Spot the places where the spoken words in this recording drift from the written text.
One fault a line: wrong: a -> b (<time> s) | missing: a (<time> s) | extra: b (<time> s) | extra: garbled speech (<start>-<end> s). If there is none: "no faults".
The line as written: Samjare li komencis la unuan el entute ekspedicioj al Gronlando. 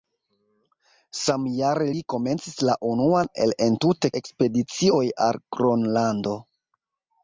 no faults